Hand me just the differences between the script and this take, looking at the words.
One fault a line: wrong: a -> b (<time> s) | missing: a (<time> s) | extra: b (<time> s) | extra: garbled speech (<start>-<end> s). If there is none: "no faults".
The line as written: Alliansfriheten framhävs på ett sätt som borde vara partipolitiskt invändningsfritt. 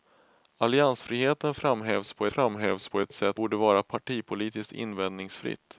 extra: framhävs på (2.3 s)
missing: som (3.4 s)